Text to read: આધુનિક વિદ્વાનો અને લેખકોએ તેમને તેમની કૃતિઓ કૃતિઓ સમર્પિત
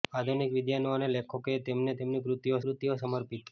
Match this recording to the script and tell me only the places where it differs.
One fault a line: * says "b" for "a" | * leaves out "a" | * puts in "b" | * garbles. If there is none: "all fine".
all fine